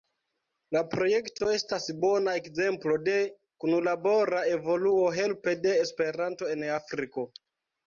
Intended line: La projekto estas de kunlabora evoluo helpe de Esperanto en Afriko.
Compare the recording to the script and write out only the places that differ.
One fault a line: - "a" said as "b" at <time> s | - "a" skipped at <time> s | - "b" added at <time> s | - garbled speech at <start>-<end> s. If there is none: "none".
- "bona ekzemplo" added at 2.0 s